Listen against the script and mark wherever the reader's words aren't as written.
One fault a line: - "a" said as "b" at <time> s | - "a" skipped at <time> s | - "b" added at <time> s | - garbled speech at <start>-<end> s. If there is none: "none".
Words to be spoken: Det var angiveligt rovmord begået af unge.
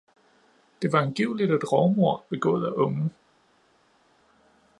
- "et" added at 1.5 s